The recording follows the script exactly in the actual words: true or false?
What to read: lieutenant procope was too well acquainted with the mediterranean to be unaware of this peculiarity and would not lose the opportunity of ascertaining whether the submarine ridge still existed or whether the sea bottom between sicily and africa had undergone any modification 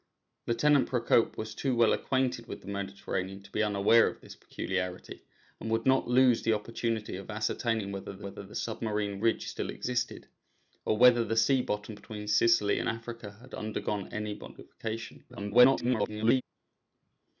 false